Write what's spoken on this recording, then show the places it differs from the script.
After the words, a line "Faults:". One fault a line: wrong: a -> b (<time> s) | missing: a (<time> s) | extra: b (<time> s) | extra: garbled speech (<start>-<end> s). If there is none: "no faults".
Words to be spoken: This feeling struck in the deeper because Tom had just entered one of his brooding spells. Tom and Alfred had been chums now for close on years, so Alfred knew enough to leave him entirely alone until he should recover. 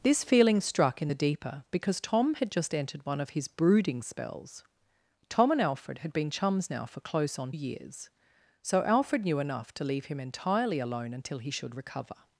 This feeling struck in the deeper because Tom had just entered one of his brooding spells. Tom and Alfred had been chums now for close on years, so Alfred knew enough to leave him entirely alone until he should recover.
Faults:
no faults